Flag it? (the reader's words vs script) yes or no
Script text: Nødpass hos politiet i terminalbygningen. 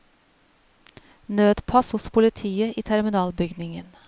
no